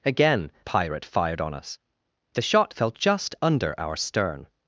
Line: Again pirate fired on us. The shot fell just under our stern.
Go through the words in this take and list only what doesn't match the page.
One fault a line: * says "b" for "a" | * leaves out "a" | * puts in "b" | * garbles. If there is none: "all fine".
all fine